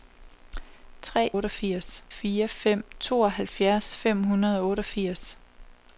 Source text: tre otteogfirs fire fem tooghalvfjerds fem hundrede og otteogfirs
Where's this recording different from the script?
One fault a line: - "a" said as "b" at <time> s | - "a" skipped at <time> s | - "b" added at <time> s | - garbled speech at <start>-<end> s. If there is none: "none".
none